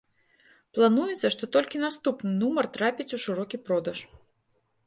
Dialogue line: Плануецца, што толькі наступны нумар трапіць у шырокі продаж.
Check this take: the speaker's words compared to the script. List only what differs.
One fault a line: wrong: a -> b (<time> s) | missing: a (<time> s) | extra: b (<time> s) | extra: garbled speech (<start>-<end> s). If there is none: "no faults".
no faults